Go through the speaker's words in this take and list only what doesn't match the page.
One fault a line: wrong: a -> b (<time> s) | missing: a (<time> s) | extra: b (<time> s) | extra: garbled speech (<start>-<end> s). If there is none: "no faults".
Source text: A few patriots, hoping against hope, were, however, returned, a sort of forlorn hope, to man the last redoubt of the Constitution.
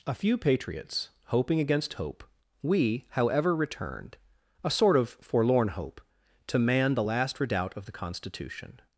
wrong: were -> we (2.6 s)